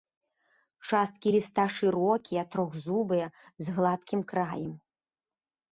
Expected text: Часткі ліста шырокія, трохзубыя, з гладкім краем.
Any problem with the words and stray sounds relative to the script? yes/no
no